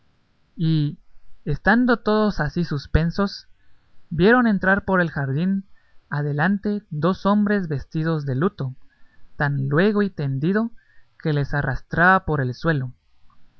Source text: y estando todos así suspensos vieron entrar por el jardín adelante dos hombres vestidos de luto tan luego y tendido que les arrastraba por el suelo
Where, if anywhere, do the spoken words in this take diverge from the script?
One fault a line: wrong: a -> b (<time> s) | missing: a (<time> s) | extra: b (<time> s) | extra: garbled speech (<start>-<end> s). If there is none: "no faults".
no faults